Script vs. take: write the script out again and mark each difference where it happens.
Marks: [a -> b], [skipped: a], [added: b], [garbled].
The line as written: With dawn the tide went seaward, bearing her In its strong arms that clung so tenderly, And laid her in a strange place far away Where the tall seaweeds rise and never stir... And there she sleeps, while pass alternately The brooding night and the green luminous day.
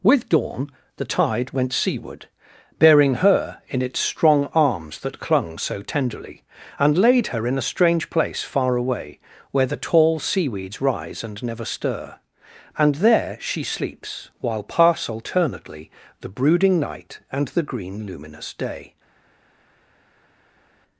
With dawn the tide went seaward, bearing her In its strong arms that clung so tenderly, And laid her in a strange place far away Where the tall seaweeds rise and never stir... And there she sleeps, while pass alternately The brooding night and the green luminous day.